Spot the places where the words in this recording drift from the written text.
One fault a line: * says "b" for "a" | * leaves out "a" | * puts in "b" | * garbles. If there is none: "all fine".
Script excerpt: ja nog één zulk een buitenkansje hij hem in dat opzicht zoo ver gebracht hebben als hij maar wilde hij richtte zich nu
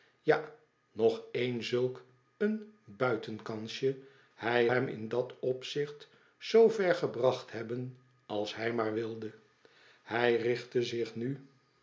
all fine